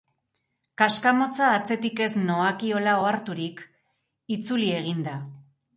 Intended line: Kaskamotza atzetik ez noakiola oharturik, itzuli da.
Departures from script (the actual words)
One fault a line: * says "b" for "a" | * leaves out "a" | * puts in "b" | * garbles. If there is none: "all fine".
* puts in "egin"